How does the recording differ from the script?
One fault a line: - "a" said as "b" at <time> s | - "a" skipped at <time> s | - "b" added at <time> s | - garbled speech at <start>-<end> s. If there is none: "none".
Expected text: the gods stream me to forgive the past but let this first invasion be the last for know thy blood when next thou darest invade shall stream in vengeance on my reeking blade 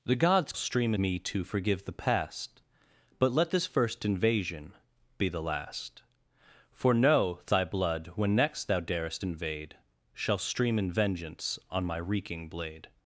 none